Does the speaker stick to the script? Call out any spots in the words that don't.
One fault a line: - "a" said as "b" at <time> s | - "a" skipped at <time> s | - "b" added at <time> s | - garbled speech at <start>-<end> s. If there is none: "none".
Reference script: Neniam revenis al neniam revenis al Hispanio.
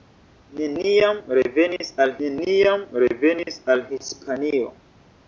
none